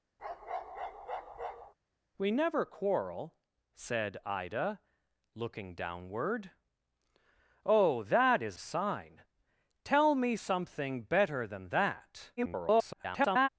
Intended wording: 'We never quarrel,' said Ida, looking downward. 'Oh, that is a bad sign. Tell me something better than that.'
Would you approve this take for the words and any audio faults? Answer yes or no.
no